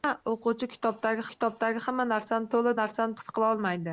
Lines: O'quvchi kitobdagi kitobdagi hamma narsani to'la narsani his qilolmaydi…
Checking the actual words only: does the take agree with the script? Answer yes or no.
yes